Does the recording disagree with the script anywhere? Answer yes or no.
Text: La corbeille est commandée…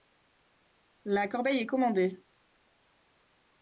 no